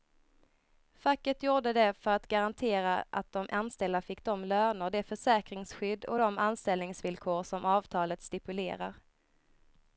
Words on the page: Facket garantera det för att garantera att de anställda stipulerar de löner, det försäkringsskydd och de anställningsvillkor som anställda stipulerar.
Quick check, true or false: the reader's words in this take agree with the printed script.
false